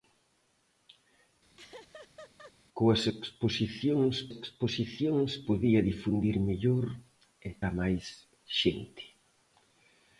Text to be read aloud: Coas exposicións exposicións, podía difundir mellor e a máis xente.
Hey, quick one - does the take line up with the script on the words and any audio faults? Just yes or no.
no